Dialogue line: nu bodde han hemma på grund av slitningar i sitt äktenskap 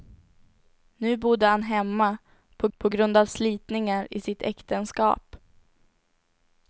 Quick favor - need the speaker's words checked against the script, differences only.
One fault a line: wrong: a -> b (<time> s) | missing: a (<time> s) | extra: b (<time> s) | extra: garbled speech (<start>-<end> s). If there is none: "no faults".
extra: på (2.8 s)